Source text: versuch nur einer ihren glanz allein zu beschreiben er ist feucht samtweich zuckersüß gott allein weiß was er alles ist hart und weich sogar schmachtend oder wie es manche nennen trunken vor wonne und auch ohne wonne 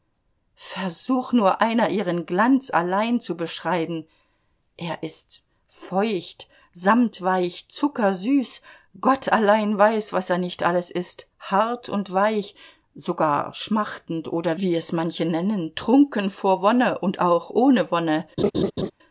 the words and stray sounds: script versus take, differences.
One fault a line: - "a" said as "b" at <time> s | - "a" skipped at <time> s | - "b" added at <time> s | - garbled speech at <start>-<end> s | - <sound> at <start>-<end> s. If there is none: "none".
- "nicht" added at 10.4 s
- laugh at 18.4-18.9 s